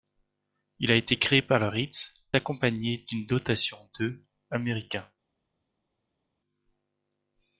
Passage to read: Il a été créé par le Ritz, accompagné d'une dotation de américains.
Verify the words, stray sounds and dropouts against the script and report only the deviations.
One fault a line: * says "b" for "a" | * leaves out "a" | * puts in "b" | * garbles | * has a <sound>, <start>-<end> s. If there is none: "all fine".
all fine